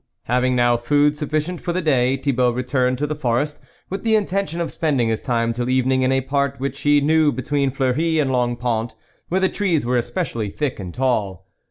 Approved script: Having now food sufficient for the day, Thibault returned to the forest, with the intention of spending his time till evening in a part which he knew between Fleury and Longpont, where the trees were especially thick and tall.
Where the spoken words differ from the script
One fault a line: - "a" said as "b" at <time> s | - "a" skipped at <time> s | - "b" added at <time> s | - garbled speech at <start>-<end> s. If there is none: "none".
none